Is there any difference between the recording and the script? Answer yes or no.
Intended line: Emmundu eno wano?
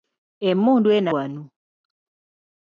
no